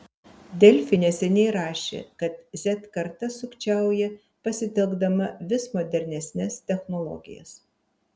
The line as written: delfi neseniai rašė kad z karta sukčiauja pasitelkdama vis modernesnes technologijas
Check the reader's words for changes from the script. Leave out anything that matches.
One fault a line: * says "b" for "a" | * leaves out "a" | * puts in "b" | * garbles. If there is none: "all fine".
all fine